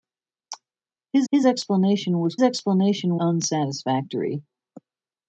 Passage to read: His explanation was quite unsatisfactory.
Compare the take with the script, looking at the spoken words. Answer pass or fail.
fail